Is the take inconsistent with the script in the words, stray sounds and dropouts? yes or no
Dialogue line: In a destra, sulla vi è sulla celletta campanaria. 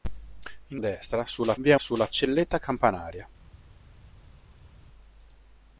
no